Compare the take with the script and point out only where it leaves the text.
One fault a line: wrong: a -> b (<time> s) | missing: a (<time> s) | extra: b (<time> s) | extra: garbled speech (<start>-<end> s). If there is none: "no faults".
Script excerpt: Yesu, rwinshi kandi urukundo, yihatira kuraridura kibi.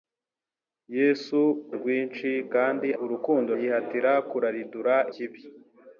no faults